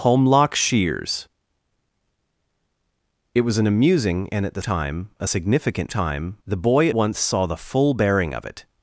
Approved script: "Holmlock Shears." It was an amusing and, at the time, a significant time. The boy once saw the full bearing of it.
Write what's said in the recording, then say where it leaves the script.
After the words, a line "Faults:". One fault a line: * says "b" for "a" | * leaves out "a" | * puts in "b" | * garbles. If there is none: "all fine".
"Holmlock Shears." It was an amusing and, at the time, a significant time. The boy once saw the full bearing of it.
Faults:
all fine